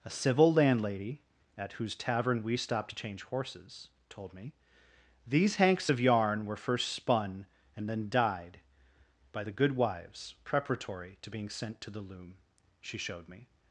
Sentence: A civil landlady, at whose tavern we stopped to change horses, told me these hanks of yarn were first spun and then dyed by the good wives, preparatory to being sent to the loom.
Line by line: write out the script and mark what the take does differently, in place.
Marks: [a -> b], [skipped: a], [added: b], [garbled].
A civil landlady, at whose tavern we stopped to change horses, told me these hanks of yarn were first spun and then dyed by the good wives, preparatory to being sent to the loom. [added: She showed me]